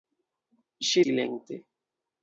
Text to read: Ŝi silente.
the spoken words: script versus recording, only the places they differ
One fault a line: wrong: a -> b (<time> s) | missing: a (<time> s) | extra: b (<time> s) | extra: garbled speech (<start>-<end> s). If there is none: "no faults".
no faults